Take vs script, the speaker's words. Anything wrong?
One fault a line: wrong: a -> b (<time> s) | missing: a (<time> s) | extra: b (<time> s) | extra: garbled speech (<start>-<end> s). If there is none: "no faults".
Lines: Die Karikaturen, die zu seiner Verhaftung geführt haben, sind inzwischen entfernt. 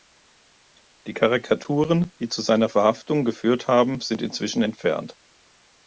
no faults